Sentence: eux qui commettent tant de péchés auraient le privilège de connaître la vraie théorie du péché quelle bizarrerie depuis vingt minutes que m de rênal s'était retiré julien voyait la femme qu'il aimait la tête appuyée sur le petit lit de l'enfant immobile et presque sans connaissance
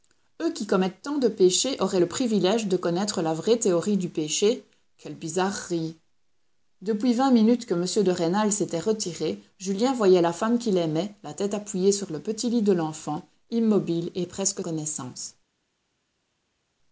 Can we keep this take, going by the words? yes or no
no